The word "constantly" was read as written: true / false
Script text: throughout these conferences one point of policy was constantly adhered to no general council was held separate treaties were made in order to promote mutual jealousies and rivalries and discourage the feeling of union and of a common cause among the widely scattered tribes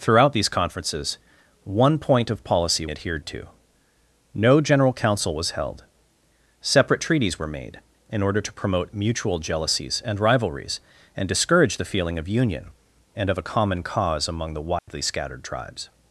false